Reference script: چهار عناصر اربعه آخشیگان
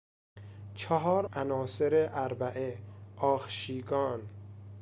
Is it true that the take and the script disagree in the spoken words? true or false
false